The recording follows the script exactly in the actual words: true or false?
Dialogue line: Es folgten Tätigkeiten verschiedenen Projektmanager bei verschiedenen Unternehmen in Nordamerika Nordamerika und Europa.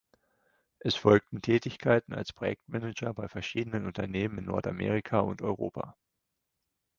false